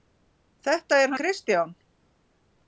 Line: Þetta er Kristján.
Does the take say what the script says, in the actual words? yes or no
yes